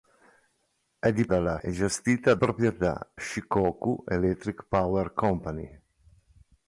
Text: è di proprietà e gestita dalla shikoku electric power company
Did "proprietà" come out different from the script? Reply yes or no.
yes